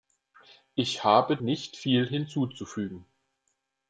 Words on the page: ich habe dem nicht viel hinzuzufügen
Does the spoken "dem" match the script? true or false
false